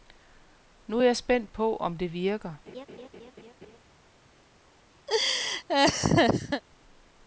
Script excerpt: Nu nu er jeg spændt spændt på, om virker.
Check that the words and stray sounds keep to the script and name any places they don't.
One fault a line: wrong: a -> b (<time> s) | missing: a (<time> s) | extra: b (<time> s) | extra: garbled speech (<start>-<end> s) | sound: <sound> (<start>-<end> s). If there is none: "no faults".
missing: nu (1.0 s)
missing: spændt (1.5 s)
extra: det (2.0 s)
sound: laugh (2.7-3.8 s)
sound: laugh (5.1-6.6 s)